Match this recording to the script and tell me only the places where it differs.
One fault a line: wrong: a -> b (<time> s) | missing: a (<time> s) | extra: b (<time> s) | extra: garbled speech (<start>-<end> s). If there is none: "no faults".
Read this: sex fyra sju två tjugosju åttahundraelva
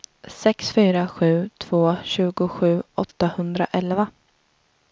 no faults